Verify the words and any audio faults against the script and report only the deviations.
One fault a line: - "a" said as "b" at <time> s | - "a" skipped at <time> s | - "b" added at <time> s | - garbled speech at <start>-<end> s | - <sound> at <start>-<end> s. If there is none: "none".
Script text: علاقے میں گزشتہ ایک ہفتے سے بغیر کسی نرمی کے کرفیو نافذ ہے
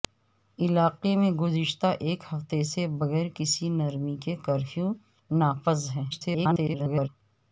- garbled speech at 6.1-7.1 s